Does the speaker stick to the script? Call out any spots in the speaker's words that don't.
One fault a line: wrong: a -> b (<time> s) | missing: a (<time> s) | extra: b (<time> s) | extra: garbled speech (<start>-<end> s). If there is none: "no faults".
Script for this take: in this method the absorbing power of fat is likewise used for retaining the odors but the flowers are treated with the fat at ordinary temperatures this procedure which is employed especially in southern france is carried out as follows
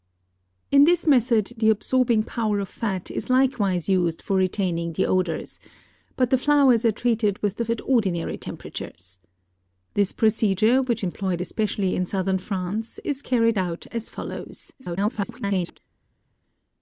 missing: fat (7.7 s)
missing: is (11.0 s)
extra: garbled speech (14.8-15.8 s)